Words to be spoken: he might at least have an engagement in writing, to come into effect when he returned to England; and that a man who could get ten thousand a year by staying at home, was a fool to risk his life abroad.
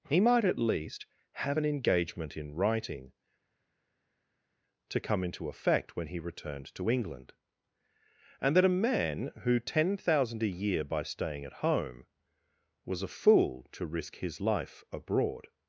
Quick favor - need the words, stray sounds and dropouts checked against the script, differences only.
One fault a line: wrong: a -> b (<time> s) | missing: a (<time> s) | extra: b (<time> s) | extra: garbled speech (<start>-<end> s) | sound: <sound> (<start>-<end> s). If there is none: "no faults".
missing: could get (9.6 s)